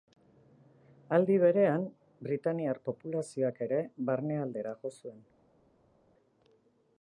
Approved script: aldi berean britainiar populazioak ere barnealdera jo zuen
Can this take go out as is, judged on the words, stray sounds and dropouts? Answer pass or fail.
pass